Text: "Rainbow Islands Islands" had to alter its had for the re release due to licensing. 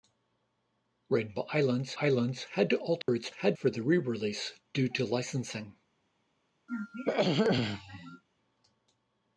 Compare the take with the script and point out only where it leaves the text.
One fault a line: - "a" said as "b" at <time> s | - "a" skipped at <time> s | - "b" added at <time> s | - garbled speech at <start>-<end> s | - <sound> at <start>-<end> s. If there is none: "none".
- dropout at 3.0-3.1 s
- throat clearing at 6.7-8.2 s